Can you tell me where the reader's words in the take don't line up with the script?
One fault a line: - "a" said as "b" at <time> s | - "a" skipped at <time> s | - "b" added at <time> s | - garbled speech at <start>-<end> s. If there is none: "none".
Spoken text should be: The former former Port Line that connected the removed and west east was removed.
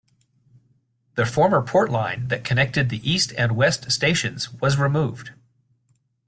- "former" skipped at 1.6 s
- "removed" said as "east" at 3.1 s
- "east" said as "stations" at 3.9 s